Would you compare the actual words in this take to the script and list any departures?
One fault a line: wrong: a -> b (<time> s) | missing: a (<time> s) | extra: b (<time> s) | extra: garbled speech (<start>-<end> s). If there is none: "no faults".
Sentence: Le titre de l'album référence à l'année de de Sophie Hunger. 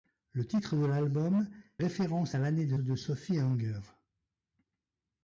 no faults